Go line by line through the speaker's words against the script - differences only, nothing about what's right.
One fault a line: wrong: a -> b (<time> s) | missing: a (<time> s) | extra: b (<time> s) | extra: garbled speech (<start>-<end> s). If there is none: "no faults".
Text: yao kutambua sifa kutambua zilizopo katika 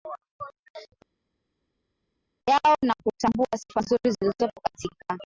extra: na (2.8 s)
wrong: kutambua -> nzuri (3.8 s)